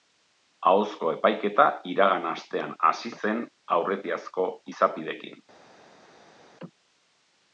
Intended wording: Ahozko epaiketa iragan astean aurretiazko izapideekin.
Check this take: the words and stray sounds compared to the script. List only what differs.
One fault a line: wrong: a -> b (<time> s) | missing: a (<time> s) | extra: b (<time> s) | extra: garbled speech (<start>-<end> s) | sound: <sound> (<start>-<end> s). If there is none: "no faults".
extra: hasi zen (2.9 s)